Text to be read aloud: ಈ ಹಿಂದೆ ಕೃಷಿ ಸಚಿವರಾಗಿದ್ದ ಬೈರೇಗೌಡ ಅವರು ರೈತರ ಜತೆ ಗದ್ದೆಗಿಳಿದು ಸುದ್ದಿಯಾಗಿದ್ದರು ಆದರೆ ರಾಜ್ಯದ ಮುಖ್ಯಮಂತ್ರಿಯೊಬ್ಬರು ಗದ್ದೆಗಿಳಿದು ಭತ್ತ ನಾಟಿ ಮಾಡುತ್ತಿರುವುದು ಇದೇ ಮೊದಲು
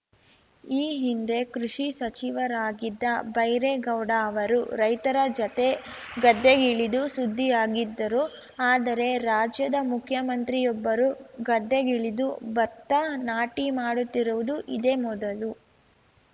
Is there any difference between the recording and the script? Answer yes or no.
no